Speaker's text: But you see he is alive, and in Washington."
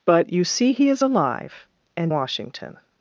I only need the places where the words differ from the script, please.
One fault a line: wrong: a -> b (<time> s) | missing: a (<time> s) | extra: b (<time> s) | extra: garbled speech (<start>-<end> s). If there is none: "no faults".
missing: in (2.1 s)